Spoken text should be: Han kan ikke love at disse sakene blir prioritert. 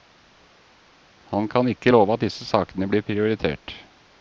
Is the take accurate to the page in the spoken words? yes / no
yes